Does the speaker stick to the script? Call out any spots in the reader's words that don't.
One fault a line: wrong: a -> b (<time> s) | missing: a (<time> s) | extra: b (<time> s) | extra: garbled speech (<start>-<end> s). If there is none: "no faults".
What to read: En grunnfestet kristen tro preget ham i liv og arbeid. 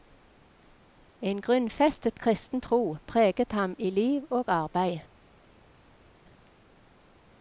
no faults